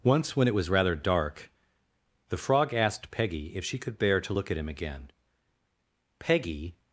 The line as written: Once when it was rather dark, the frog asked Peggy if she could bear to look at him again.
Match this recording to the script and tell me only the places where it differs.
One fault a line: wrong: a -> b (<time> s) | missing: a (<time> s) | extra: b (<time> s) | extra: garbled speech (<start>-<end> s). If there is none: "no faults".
extra: Peggy (6.2 s)